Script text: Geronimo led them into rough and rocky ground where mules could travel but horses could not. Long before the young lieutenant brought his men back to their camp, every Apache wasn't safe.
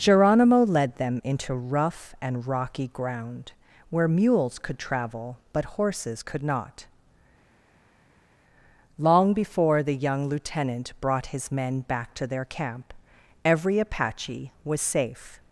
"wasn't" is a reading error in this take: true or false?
true